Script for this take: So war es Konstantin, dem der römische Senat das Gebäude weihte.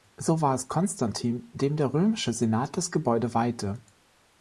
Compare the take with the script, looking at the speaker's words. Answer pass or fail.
pass